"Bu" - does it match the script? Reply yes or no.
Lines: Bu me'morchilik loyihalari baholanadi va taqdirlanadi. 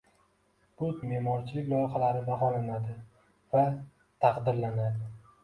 yes